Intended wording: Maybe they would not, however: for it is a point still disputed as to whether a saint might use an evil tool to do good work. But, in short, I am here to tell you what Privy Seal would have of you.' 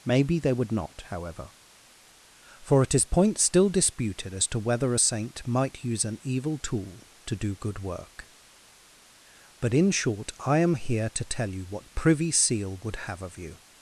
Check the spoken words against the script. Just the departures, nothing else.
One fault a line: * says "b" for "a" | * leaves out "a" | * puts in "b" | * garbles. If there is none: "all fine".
* leaves out "a"